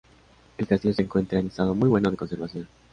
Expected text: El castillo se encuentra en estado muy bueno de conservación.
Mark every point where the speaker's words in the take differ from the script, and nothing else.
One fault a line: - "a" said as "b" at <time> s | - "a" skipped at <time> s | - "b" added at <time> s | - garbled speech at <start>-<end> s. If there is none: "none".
none